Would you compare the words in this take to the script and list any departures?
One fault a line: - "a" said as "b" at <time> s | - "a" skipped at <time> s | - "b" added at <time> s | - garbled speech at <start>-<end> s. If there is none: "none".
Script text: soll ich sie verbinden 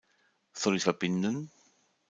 - "sie" skipped at 0.8 s